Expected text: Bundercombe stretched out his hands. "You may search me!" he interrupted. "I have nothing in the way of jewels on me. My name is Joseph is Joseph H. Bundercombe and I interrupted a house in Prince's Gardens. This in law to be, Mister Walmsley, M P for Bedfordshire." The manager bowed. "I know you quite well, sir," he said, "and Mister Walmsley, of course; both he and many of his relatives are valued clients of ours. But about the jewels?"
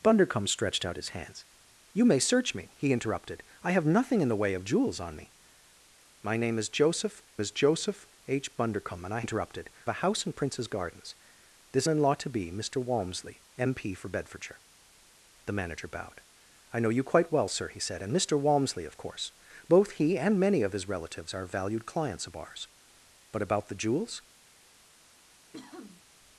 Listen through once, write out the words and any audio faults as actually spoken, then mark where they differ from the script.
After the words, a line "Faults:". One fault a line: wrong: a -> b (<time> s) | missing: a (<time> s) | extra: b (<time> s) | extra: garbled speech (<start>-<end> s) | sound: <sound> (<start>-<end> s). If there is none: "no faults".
Bundercombe stretched out his hands. "You may search me!" he interrupted. "I have nothing in the way of jewels on me. My name is Joseph is Joseph H. Bundercombe and I interrupted a house in Prince's Gardens. This in law to be, Mister Walmsley, M P for Bedfordshire." The manager bowed. "I know you quite well, sir," he said, "and Mister Walmsley, of course; both he and many of his relatives are valued clients of ours. But about the jewels?"
Faults:
sound: sniff (25.5-26.0 s)